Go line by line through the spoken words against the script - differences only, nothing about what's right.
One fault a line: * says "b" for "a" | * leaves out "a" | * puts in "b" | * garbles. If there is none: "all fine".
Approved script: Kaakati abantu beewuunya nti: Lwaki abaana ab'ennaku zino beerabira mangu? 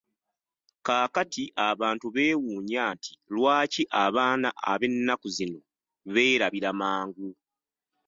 all fine